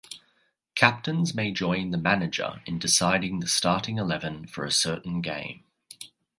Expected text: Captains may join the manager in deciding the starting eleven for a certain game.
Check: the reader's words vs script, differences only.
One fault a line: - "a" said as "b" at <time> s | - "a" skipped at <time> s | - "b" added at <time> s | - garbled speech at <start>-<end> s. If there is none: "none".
none